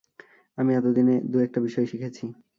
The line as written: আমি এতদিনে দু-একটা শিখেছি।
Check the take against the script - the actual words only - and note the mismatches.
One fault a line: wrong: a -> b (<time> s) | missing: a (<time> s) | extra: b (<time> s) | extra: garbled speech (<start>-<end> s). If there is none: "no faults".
extra: বিষয় (1.6 s)